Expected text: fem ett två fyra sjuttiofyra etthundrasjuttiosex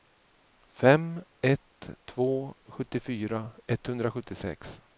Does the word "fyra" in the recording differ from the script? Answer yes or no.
yes